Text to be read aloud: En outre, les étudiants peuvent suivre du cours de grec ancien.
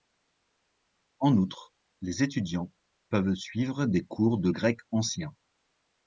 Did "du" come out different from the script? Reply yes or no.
yes